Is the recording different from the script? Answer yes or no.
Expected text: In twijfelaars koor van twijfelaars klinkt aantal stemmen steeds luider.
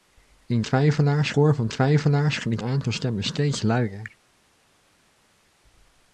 no